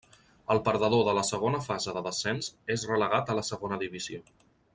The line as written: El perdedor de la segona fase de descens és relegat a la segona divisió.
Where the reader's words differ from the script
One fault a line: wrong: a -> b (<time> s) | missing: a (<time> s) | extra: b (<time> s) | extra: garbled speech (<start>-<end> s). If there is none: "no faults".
no faults